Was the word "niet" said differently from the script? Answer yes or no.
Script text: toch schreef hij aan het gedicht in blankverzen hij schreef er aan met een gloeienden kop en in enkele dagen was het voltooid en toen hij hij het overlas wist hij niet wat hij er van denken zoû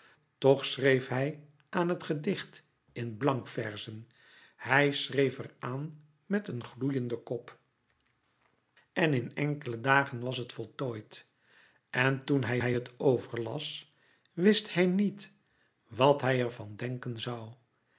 no